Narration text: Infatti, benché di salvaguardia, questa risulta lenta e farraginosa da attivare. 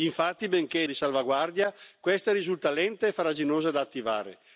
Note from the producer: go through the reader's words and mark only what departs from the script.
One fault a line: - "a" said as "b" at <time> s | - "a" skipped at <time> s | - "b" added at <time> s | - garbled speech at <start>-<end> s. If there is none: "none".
none